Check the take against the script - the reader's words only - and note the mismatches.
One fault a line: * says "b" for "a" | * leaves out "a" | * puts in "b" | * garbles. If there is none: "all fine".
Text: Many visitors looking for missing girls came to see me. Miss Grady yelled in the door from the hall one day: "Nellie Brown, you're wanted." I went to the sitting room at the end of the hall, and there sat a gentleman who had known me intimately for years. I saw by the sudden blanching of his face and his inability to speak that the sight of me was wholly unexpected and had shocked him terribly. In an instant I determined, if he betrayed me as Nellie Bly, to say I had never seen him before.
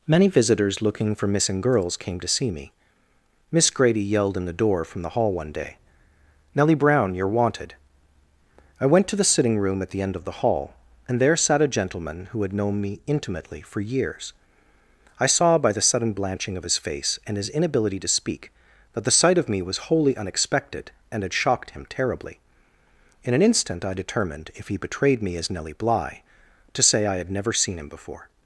all fine